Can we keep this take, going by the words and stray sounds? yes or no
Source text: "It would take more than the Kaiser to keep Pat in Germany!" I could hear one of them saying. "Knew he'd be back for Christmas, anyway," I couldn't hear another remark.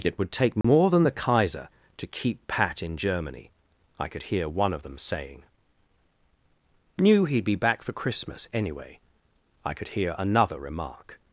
no